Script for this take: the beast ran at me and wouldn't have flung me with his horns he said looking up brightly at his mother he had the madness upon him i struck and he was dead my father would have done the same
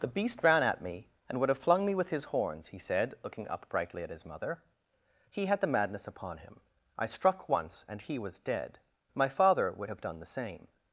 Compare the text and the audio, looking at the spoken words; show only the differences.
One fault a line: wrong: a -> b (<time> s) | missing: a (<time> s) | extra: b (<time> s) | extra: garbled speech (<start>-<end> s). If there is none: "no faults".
wrong: wouldn't -> would (1.4 s)
extra: once (7.5 s)